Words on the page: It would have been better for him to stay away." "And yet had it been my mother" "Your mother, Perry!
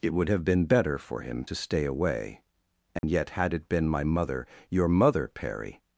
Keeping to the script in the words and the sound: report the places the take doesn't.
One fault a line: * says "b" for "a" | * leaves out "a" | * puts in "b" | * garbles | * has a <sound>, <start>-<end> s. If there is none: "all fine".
* has a dropout, 3.0-3.0 s